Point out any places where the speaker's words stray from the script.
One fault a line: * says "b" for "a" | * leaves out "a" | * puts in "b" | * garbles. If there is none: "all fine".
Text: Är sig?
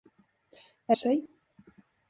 all fine